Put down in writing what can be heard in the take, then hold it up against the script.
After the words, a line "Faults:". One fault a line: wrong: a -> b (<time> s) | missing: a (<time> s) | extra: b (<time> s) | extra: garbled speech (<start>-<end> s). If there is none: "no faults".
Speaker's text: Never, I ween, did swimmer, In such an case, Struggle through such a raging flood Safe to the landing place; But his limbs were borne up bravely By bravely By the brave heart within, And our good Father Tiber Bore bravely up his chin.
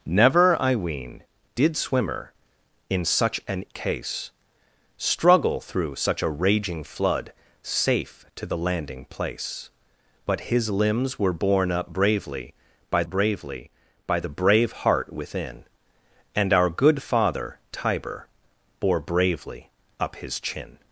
Never, I ween, did swimmer, In such an case, Struggle through such a raging flood Safe to the landing place; But his limbs were borne up bravely By bravely By the brave heart within, And our good Father Tiber Bore bravely up his chin.
Faults:
no faults